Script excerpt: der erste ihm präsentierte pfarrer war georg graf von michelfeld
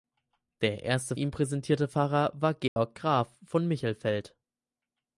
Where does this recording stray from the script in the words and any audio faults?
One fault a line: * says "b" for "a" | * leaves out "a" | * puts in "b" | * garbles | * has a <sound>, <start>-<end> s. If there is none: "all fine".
* has a dropout, 2.7-2.8 s